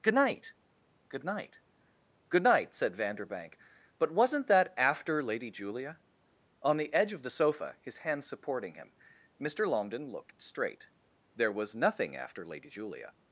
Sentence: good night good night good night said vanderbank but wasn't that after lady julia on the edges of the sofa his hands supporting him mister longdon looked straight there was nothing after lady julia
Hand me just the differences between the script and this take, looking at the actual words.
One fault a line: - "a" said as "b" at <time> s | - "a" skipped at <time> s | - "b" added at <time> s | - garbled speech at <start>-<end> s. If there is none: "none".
- "edges" said as "edge" at 6.9 s